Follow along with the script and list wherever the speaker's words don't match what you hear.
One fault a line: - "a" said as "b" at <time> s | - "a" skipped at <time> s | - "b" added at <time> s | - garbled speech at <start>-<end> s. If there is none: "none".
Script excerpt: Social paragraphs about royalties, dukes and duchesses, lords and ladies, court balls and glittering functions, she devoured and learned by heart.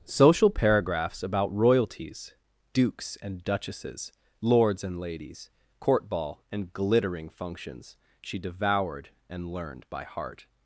- "balls" said as "ball" at 6.1 s